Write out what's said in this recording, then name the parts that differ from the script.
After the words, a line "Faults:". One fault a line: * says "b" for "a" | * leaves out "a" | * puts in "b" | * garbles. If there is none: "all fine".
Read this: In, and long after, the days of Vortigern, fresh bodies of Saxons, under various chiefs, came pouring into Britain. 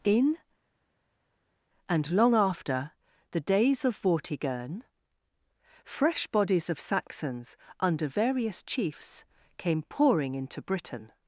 In, and long after, the days of Vortigern, fresh bodies of Saxons, under various chiefs, came pouring into Britain.
Faults:
all fine